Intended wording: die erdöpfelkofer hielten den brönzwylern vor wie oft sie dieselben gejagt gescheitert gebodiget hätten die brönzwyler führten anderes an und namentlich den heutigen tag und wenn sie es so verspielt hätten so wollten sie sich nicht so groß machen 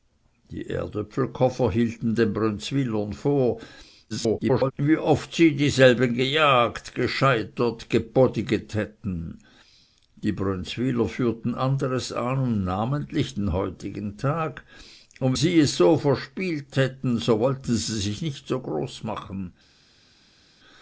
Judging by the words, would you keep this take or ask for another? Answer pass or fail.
fail